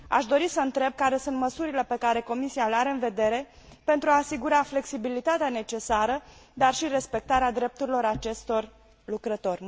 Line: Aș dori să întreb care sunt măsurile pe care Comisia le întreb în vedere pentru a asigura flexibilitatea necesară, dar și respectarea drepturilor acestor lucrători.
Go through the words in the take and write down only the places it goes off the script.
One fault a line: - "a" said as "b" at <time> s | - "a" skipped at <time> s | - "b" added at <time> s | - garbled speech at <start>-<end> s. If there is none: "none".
- "întreb" said as "are" at 2.7 s